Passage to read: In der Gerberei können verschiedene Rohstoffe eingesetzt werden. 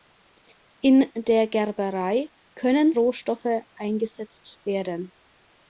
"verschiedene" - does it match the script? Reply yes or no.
no